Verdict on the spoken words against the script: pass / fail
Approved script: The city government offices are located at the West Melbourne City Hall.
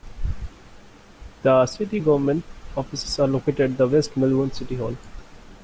pass